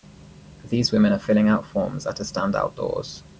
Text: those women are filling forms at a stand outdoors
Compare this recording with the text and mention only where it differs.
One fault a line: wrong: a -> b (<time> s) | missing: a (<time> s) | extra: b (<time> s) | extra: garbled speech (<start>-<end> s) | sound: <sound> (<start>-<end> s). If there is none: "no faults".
wrong: those -> these (0.7 s)
extra: out (1.5 s)